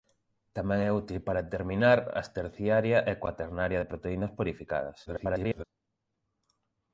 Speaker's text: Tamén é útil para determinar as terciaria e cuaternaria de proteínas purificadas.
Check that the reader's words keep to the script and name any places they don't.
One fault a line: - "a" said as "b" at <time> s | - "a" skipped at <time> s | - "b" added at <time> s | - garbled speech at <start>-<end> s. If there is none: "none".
- garbled speech at 5.1-5.6 s